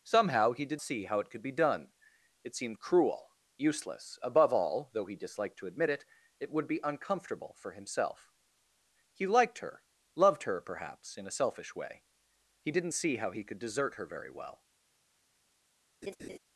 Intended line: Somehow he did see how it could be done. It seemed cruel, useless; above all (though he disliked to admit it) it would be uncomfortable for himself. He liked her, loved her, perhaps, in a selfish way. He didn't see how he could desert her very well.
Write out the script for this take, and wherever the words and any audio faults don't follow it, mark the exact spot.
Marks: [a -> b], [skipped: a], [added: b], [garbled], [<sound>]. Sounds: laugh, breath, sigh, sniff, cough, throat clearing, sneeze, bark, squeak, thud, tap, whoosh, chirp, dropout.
Somehow he did see how it could be done. It seemed cruel, useless; above all (though he disliked to admit it) it would be uncomfortable for himself. He liked her, loved her, perhaps, in a selfish way. He didn't see how he could desert her very well. [laugh]